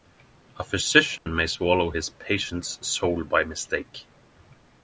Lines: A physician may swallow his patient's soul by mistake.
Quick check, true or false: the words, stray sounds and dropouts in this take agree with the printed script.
false